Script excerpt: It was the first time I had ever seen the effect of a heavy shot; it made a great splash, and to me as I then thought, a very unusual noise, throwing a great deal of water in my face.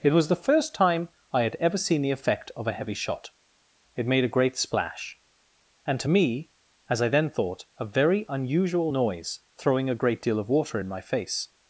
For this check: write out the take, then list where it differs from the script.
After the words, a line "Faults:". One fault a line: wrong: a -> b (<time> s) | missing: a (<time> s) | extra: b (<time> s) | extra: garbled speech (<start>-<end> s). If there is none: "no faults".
It was the first time I had ever seen the effect of a heavy shot; it made a great splash, and to me as I then thought, a very unusual noise, throwing a great deal of water in my face.
Faults:
no faults